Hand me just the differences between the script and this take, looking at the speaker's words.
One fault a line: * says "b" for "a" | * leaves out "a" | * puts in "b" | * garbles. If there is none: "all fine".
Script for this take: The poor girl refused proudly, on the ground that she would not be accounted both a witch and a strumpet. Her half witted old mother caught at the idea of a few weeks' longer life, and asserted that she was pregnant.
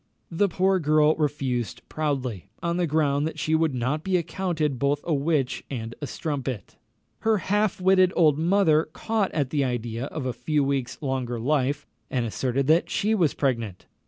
all fine